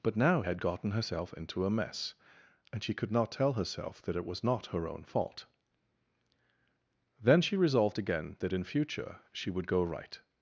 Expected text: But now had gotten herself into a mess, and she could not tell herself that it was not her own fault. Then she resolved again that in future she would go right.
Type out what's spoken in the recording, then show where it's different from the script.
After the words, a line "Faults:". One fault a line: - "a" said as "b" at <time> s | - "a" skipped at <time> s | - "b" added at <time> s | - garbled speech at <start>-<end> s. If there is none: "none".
But now had gotten herself into a mess, and she could not tell herself that it was not her own fault. Then she resolved again that in future she would go right.
Faults:
none